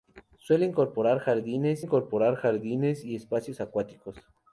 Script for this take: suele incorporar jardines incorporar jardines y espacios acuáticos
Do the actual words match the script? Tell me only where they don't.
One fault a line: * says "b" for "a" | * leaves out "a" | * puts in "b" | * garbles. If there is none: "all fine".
all fine